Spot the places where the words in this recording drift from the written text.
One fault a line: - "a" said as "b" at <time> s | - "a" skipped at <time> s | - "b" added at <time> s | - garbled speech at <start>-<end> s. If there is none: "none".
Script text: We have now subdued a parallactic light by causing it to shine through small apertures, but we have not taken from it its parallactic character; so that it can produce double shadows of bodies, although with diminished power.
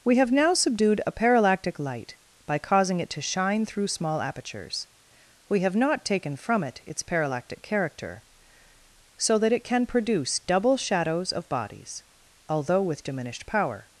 - "but" skipped at 4.9 s